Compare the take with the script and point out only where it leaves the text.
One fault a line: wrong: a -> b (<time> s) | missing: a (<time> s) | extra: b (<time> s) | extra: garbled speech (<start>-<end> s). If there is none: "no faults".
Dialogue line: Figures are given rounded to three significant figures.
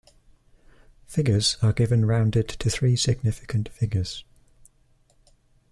no faults